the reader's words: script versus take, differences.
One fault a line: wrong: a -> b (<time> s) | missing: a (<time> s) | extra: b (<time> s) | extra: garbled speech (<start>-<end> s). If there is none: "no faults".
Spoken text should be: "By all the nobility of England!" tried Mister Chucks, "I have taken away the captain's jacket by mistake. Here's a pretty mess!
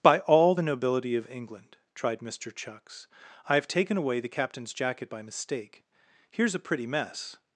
no faults